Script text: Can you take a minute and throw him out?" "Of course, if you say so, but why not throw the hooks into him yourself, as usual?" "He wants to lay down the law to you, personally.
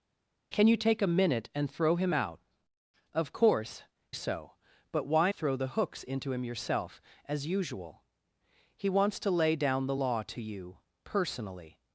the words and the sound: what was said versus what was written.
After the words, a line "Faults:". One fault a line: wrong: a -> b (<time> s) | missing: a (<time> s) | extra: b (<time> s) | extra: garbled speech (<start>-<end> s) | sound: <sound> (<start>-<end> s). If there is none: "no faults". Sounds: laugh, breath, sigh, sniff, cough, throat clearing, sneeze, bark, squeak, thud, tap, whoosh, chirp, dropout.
Can you take a minute and throw him out?" "Of course, so, but why throw the hooks into him yourself, as usual?" "He wants to lay down the law to you, personally.
Faults:
missing: if you say (3.8 s)
missing: not (5.3 s)